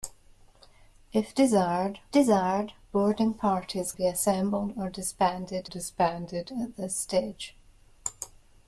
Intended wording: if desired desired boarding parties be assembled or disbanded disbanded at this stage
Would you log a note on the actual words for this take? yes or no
no